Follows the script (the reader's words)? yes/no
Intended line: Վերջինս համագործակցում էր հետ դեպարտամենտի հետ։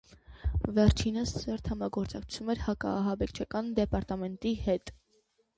no